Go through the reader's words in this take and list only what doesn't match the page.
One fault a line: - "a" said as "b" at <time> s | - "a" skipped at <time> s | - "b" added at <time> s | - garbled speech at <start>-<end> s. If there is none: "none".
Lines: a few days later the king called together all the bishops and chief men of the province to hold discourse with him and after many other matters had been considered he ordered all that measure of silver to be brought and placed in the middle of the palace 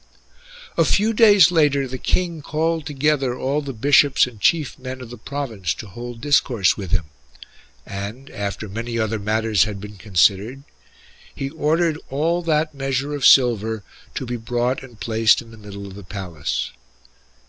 none